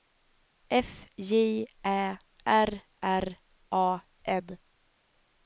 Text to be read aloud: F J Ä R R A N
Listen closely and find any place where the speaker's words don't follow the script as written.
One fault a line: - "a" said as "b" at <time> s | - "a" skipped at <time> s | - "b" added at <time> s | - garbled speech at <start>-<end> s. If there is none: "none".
none